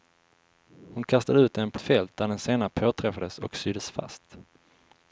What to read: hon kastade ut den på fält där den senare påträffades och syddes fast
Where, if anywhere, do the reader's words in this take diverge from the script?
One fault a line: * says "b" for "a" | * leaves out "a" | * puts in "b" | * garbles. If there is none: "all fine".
all fine